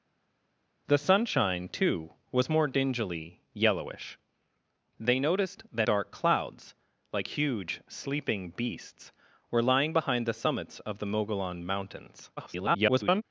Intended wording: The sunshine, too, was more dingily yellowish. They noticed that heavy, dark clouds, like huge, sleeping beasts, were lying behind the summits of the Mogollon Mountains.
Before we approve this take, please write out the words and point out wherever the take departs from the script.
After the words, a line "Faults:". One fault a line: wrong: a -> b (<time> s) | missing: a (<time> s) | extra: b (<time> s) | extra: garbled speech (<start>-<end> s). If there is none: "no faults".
The sunshine, too, was more dingily yellowish. They noticed that dark clouds, like huge, sleeping beasts, were lying behind the summits of the Mogollon Mountains. [garbled]
Faults:
missing: heavy (5.9 s)
extra: garbled speech (12.4-13.2 s)